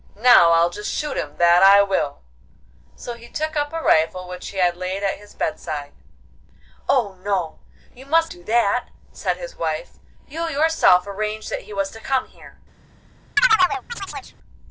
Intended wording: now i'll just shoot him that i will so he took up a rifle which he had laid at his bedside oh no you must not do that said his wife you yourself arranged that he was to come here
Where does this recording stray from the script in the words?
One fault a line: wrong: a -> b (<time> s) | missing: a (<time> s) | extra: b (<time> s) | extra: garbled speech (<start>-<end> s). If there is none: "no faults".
missing: not (8.3 s)